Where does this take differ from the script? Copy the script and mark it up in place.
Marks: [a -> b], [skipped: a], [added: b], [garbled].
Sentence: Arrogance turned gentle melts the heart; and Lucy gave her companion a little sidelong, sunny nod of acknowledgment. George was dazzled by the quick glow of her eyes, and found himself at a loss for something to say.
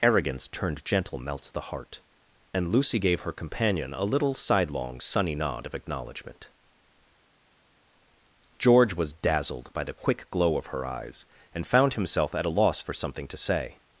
Arrogance turned gentle melts the heart; and Lucy gave her companion a little sidelong, sunny nod of acknowledgment. George was dazzled by the quick glow of her eyes, and found himself at a loss for something to say.